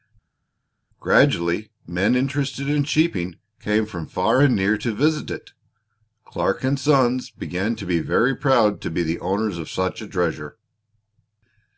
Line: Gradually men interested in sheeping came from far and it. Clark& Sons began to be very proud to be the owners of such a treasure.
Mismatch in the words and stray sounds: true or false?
true